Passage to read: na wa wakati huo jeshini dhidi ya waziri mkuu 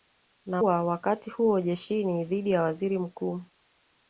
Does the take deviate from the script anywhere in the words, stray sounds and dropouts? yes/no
no